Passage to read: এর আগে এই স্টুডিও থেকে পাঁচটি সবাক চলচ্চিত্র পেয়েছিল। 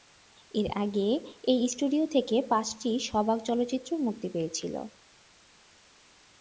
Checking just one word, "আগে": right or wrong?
right